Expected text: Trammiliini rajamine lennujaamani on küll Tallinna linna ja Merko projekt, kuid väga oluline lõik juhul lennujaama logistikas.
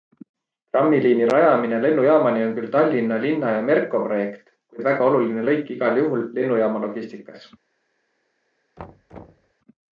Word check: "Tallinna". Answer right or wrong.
right